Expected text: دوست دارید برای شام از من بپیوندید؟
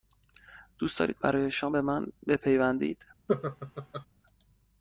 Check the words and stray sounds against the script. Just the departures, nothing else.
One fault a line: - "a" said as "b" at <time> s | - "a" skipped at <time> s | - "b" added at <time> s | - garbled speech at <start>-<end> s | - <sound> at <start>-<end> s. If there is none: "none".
- "از" said as "به" at 1.7 s
- laugh at 3.3-4.1 s